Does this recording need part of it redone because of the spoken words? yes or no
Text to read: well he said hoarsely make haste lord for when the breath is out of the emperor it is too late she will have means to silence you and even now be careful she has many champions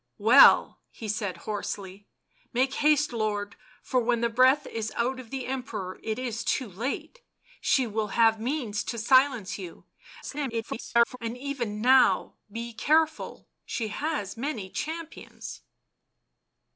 yes